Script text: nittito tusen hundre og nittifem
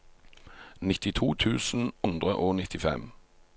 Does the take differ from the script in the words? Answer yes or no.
no